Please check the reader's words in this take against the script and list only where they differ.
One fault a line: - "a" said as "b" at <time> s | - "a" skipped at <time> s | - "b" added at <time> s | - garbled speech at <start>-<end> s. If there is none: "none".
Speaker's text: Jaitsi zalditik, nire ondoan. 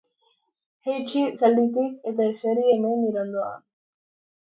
- "eta eseri hemen" added at 2.1 s